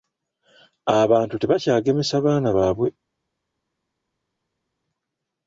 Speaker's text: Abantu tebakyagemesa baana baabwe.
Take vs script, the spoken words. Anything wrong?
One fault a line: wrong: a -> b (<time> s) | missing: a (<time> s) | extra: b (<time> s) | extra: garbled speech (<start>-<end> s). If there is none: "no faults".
no faults